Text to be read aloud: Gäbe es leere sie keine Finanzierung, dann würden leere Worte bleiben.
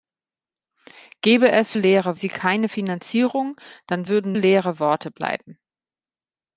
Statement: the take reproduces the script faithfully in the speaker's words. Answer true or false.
true